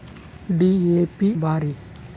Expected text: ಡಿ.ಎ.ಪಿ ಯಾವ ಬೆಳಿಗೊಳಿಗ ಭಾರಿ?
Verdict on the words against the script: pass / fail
fail